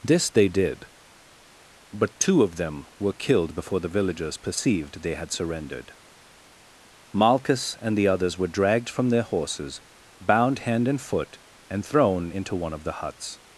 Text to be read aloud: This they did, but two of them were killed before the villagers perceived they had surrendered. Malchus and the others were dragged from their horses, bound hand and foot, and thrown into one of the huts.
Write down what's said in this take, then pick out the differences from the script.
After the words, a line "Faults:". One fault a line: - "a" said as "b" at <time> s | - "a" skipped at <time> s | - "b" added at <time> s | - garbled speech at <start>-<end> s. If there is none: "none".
This they did, but two of them were killed before the villagers perceived they had surrendered. Malchus and the others were dragged from their horses, bound hand and foot, and thrown into one of the huts.
Faults:
none